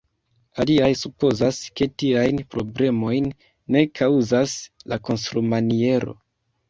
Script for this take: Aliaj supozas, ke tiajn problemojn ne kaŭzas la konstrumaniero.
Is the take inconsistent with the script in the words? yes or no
no